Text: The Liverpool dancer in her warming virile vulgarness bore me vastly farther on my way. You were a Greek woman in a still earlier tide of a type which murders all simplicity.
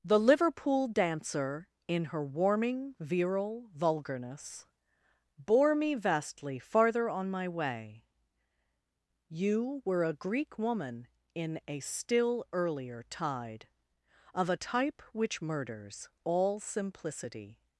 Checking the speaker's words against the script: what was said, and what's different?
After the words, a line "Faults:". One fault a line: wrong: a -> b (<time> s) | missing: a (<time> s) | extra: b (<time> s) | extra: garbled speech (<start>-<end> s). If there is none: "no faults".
The Liverpool dancer in her warming virile vulgarness bore me vastly farther on my way. You were a Greek woman in a still earlier tide of a type which murders all simplicity.
Faults:
no faults